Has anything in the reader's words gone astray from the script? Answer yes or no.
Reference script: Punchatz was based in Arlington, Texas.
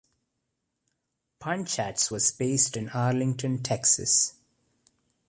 no